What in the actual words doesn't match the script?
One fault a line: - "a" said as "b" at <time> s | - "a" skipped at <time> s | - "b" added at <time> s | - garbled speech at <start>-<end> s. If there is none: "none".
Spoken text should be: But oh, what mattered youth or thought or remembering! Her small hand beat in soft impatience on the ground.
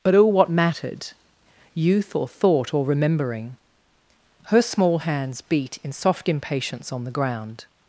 - "hand" said as "hands" at 5.0 s